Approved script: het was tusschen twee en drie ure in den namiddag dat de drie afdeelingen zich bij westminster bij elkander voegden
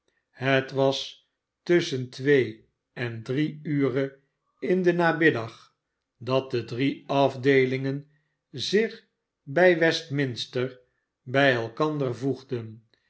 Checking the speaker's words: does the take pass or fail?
pass